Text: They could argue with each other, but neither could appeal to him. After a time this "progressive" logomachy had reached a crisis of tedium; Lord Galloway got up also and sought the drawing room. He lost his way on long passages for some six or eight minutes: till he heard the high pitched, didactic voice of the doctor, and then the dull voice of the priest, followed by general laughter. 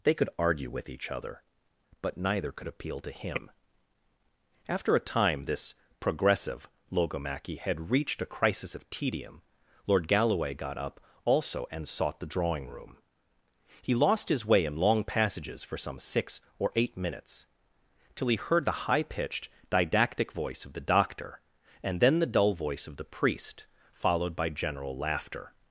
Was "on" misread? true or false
true